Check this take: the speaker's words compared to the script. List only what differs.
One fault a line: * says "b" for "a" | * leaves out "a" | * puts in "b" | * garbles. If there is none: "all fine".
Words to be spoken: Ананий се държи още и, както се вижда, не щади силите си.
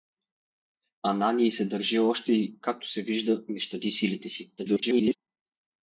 * garbles